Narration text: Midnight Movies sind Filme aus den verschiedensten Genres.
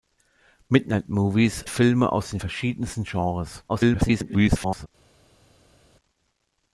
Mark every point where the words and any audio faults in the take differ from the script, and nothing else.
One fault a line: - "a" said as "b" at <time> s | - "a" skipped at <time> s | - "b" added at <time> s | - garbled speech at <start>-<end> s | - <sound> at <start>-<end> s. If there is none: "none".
- "sind" skipped at 1.6 s
- garbled speech at 3.7-4.9 s